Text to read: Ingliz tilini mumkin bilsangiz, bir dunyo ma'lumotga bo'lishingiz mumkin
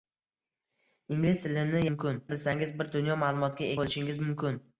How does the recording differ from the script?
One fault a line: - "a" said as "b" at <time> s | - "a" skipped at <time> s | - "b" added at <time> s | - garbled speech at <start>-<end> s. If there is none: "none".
none